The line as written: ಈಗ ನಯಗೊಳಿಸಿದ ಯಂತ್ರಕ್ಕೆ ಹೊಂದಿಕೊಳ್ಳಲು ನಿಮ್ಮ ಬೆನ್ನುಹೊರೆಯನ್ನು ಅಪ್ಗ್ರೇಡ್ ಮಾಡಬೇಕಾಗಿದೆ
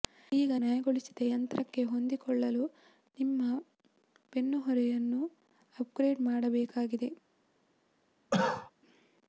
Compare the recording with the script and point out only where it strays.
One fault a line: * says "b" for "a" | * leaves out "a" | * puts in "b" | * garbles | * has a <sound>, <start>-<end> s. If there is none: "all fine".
* has a cough, 8.3-8.7 s